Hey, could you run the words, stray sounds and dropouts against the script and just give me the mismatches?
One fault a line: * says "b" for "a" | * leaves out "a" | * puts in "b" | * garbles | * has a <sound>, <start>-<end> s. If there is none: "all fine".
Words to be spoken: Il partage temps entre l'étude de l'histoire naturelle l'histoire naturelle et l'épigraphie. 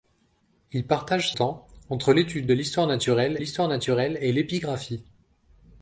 all fine